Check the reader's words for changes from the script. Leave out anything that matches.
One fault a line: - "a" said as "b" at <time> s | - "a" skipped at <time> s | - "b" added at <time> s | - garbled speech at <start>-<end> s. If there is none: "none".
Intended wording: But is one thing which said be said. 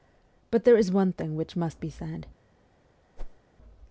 - "there" added at 0.6 s
- "said" said as "must" at 1.6 s